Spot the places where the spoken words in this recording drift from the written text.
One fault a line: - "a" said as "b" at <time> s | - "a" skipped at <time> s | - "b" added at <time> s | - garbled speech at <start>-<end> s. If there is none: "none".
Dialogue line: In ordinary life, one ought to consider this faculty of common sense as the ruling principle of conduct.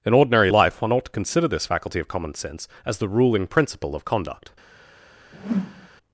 none